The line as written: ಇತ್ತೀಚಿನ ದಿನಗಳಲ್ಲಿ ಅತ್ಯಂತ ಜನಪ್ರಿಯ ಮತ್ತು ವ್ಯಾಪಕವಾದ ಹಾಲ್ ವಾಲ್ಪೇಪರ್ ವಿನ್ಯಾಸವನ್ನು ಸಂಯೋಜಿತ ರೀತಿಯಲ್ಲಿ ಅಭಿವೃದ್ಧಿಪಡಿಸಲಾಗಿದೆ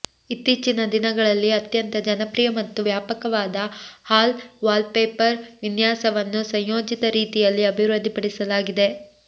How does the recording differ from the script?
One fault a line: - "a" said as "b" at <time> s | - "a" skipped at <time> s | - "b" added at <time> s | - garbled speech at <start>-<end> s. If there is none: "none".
none